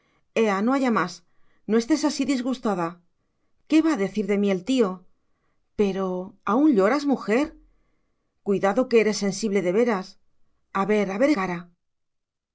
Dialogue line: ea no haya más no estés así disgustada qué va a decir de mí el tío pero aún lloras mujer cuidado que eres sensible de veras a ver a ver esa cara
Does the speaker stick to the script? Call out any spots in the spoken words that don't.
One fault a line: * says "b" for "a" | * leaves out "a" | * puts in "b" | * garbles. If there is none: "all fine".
* leaves out "esa"